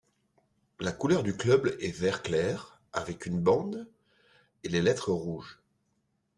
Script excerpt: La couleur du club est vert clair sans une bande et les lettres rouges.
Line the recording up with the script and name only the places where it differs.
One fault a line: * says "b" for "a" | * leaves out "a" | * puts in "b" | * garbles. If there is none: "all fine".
* says "avec" for "sans"